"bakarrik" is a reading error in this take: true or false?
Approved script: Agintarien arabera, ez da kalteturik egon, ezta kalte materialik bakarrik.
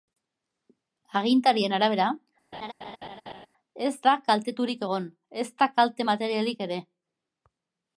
true